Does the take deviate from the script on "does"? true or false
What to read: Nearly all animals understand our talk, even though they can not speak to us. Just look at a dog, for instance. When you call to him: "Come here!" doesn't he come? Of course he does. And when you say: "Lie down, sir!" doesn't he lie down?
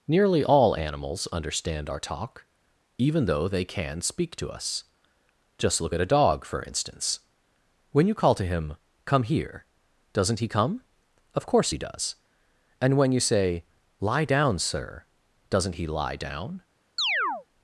false